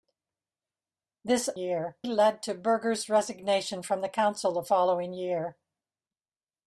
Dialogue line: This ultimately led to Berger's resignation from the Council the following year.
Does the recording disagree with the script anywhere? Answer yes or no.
yes